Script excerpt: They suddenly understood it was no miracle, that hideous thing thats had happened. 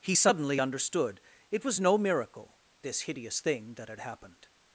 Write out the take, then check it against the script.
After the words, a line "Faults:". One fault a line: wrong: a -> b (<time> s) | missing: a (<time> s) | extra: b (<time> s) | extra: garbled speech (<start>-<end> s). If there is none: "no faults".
He suddenly understood it was no miracle, this hideous thing that had happened.
Faults:
wrong: They -> He (0.0 s)
wrong: that -> this (2.8 s)
wrong: thats -> that (3.8 s)